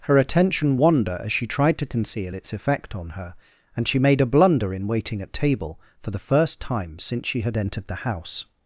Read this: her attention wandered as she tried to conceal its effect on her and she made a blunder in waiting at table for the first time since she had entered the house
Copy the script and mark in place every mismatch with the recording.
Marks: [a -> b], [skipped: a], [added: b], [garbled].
her attention [wandered -> wander] as she tried to conceal its effect on her and she made a blunder in waiting at table for the first time since she had entered the house